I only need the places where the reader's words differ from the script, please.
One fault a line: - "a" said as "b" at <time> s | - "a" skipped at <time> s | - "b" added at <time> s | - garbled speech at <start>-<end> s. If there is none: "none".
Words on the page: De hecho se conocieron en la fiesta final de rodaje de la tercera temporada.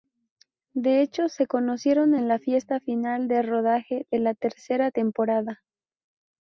none